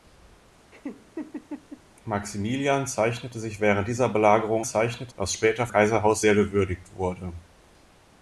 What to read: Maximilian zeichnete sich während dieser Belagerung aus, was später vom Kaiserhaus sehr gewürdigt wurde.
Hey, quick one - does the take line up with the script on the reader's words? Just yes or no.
no